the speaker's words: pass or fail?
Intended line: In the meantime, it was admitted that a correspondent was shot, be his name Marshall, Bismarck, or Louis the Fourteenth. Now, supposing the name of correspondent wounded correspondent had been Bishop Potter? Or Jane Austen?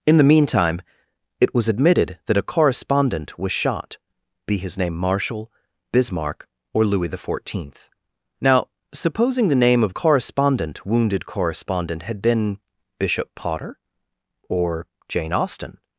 pass